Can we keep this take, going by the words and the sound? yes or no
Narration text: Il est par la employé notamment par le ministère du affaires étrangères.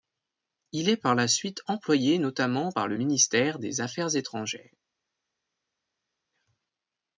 no